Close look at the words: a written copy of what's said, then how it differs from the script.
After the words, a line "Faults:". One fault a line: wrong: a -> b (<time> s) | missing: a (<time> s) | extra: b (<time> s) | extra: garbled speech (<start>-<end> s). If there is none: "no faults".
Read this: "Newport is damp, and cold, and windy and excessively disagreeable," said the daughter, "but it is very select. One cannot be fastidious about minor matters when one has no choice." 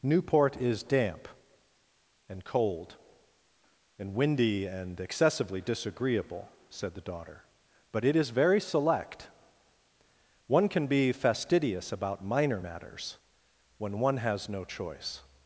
"Newport is damp, and cold, and windy and excessively disagreeable," said the daughter, "but it is very select. One can be fastidious about minor matters when one has no choice."
Faults:
wrong: cannot -> can (10.7 s)